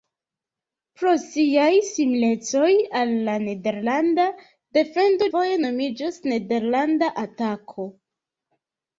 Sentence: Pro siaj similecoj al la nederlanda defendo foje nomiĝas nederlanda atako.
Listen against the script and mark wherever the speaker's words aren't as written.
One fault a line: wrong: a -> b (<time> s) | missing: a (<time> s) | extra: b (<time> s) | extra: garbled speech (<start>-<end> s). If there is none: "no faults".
no faults